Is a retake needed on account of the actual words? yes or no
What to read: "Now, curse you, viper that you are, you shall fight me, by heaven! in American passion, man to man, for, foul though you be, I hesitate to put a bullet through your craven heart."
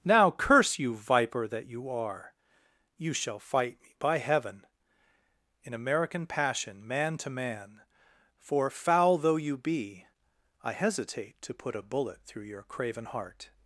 no